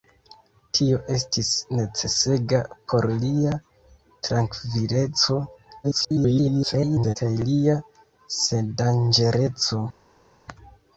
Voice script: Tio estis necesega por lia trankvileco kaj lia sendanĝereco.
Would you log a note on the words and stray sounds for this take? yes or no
yes